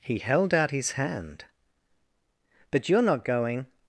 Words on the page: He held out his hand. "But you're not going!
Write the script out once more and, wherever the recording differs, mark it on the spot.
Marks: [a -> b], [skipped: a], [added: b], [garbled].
He held out his hand. "But you're not going!